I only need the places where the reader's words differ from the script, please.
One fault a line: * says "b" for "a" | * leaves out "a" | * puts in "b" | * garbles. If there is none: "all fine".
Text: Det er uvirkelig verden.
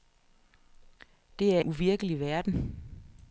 all fine